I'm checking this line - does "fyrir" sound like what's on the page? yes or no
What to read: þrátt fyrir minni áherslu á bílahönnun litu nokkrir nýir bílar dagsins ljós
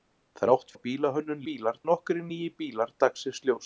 no